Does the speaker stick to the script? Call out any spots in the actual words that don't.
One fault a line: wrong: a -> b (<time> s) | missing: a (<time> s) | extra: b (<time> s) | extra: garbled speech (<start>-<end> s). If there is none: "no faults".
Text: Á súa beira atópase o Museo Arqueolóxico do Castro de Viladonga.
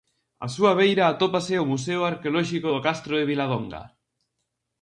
no faults